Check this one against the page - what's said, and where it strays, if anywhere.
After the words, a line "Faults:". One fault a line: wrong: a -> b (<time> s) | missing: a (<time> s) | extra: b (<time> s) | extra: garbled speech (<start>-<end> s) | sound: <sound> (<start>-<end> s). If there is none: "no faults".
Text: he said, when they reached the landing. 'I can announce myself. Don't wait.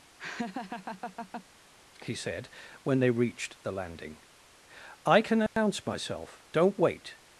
he said, when they reached the landing. 'I can announce myself. Don't wait.
Faults:
sound: laugh (0.2-1.4 s)
sound: dropout (5.5-5.6 s)